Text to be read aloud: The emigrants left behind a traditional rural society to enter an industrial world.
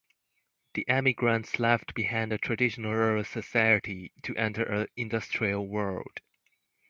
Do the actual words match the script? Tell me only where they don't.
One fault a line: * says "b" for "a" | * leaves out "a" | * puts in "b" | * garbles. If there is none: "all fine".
all fine